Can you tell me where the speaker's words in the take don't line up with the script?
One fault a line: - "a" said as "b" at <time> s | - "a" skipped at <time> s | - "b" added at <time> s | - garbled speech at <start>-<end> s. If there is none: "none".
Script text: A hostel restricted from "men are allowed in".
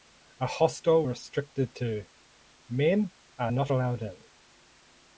- "from" said as "to" at 1.7 s
- "not" added at 3.5 s